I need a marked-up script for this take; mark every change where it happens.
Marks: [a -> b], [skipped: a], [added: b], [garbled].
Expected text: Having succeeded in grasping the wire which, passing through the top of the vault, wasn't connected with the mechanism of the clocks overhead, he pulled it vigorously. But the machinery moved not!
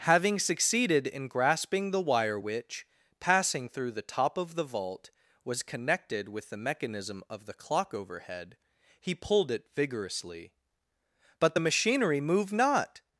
Having succeeded in grasping the wire which, passing through the top of the vault, [wasn't -> was] connected with the mechanism of the [clocks -> clock] overhead, he pulled it vigorously. But the machinery moved not!